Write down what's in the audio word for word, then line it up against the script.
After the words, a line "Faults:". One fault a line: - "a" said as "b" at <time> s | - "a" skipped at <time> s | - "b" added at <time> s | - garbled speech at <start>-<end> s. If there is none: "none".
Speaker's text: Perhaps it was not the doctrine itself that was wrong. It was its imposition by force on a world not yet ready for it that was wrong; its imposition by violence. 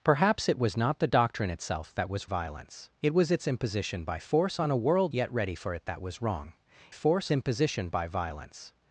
Perhaps it was not the doctrine itself that was violence. It was its imposition by force on a world yet ready for it that was wrong; force imposition by violence.
Faults:
- "wrong" said as "violence" at 2.2 s
- "not" skipped at 5.1 s
- "its" said as "force" at 6.9 s